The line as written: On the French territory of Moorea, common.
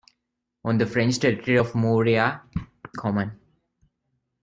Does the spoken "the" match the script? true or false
true